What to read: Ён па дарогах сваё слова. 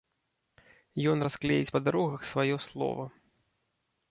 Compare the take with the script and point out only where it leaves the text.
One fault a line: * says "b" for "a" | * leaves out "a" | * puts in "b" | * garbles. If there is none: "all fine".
* puts in "расклеіць"